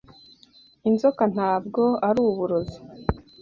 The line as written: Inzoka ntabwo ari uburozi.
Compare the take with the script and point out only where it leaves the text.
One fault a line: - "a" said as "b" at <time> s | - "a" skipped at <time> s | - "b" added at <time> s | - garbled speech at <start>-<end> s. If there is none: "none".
none